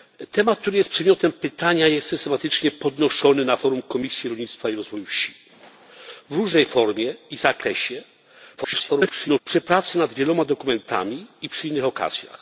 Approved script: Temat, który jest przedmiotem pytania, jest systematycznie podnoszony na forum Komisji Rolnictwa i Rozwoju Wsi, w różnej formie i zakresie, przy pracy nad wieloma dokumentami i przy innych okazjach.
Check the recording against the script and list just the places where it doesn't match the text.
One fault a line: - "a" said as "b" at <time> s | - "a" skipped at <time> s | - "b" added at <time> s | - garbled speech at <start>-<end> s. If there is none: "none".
- garbled speech at 8.6-9.4 s